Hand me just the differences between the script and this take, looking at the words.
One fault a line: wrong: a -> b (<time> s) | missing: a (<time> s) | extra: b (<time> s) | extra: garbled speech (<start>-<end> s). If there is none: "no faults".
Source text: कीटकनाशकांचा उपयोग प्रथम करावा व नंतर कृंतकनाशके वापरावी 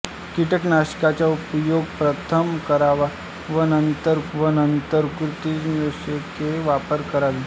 extra: व नंतर (4.3 s)